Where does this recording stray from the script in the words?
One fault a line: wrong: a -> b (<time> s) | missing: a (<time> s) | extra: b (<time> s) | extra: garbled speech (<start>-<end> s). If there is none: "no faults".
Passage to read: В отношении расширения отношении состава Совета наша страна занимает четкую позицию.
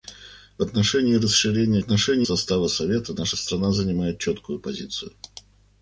no faults